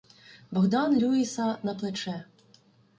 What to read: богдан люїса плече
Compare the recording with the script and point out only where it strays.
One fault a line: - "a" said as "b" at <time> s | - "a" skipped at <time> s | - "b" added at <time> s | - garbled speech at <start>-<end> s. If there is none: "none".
- "на" added at 1.6 s